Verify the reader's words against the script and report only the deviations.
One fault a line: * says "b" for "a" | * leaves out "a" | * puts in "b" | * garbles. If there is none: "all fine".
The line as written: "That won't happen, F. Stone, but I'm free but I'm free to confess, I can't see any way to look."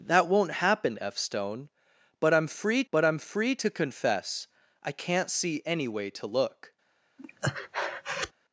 all fine